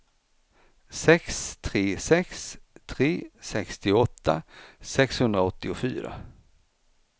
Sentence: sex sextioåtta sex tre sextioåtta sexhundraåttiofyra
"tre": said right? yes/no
yes